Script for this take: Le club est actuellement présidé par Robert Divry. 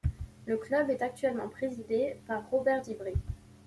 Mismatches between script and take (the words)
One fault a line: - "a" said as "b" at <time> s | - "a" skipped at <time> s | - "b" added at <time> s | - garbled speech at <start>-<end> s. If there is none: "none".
none